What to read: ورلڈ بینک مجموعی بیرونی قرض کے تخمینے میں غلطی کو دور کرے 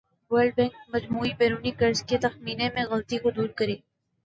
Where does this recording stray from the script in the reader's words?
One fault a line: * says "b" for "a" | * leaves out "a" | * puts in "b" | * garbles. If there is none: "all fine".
all fine